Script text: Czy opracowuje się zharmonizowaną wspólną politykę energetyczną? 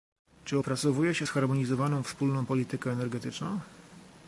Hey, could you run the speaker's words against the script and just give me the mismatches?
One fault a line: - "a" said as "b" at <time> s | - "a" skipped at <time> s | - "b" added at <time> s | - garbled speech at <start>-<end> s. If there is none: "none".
none